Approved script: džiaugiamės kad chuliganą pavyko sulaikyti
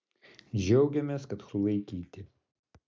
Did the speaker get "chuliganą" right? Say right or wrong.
wrong